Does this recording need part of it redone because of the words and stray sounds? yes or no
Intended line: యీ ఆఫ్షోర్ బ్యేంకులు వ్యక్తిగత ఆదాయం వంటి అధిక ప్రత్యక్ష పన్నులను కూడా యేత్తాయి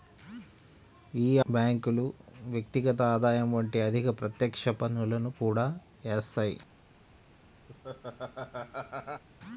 yes